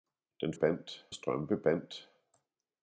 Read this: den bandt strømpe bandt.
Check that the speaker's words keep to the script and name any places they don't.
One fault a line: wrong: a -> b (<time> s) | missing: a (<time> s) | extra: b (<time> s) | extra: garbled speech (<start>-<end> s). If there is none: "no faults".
no faults